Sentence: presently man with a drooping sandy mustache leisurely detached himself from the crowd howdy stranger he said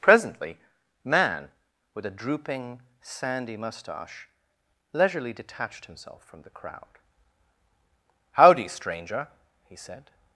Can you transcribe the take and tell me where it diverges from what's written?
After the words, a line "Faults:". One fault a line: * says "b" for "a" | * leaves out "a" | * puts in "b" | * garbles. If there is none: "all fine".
presently man with a drooping sandy mustache leisurely detached himself from the crowd howdy stranger he said
Faults:
all fine